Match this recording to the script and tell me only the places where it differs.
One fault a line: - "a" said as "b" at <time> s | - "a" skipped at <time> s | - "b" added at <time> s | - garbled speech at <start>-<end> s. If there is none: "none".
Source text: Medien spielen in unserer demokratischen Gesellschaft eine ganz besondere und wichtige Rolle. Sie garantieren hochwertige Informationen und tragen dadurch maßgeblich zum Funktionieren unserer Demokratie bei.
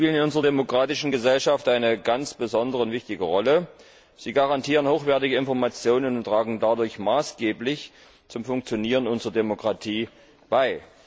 none